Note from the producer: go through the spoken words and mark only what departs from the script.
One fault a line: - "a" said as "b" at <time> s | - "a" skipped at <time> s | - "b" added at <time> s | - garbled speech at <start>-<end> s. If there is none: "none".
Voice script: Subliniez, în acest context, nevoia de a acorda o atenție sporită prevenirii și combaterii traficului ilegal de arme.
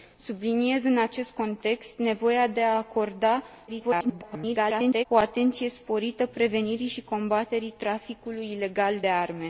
- garbled speech at 3.7-5.1 s